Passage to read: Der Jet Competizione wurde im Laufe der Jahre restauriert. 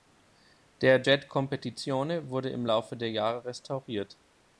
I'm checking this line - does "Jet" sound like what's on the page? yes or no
yes